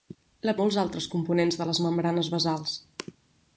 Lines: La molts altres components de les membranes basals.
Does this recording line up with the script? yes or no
yes